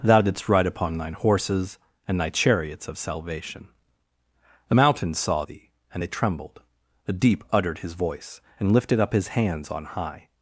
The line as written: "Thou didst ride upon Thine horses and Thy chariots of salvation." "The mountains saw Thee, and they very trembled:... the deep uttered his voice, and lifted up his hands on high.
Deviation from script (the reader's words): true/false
true